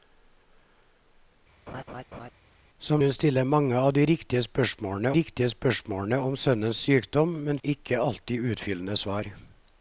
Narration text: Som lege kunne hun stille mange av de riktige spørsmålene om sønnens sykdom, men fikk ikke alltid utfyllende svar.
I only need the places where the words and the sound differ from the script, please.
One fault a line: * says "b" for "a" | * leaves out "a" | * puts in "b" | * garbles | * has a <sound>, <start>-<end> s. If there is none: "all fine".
* has a laugh, 1.7-2.3 s
* leaves out "lege kunne"
* puts in "riktige spørsmålene"
* leaves out "fikk"